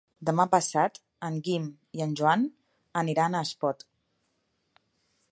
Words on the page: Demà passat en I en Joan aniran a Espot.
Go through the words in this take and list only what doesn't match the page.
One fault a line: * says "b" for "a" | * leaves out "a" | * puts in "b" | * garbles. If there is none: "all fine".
* puts in "Guim"